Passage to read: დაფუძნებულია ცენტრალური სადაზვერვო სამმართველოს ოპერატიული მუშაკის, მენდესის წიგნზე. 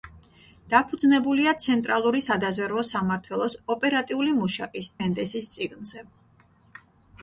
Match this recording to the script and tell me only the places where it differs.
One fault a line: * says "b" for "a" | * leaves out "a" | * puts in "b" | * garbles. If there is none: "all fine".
all fine